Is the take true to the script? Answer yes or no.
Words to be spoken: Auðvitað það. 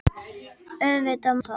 yes